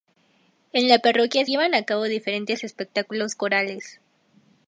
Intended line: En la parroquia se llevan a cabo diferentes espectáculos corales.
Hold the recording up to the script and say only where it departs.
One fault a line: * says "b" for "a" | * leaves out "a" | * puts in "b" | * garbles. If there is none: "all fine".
* leaves out "se"